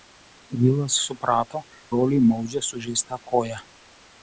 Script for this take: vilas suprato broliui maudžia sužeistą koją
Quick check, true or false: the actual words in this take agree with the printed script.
true